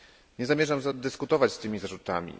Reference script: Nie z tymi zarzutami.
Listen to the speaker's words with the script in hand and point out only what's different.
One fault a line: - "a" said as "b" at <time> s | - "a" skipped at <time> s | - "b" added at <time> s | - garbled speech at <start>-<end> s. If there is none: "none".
- "zamierzam dyskutować" added at 0.5 s